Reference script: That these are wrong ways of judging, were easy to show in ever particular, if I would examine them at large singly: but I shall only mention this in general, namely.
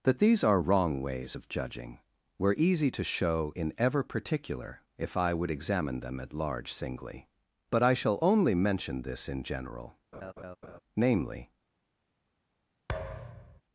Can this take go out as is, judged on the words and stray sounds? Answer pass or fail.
fail